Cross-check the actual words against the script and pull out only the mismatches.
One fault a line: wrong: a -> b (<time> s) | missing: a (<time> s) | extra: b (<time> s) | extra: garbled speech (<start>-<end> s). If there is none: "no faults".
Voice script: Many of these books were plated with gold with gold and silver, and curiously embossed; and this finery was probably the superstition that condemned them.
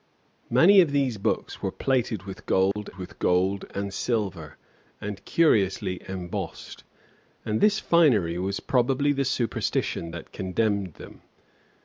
no faults